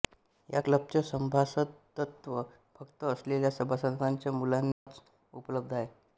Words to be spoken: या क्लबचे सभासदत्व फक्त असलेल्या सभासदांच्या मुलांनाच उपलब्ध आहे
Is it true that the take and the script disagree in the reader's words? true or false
false